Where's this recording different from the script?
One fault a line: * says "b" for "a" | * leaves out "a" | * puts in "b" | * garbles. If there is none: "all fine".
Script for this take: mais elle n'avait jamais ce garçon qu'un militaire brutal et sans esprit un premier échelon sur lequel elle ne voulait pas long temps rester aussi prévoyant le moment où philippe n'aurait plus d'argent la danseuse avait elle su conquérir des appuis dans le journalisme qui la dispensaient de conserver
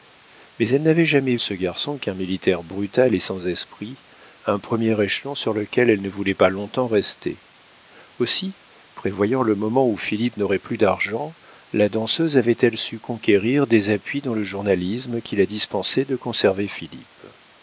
all fine